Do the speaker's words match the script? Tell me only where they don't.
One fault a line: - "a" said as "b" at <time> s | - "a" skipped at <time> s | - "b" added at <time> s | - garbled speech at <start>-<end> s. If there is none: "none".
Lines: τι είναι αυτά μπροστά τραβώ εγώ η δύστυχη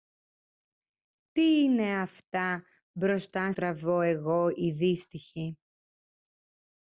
none